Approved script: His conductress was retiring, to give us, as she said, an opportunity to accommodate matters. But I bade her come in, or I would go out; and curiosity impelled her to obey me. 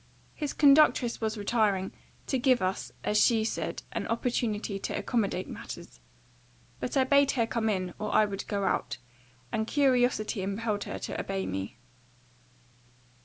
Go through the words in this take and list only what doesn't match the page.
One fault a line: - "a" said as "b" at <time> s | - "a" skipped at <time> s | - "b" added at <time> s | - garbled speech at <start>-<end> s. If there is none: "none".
none